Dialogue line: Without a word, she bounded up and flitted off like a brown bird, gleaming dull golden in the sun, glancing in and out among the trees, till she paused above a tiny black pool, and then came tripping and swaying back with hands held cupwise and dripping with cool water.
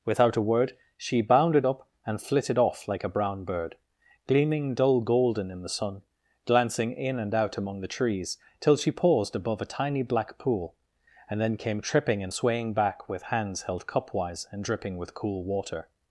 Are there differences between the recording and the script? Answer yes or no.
no